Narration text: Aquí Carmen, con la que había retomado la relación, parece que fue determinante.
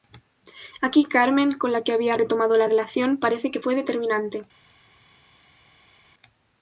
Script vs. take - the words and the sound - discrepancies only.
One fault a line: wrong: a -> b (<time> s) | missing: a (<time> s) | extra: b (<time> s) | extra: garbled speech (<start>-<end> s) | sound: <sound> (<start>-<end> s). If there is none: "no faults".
no faults